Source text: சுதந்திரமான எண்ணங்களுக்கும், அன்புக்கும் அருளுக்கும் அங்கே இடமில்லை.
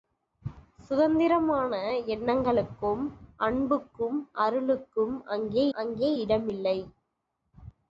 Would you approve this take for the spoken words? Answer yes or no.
no